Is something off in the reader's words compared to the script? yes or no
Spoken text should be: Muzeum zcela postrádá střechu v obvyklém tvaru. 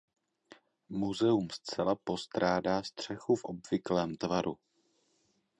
no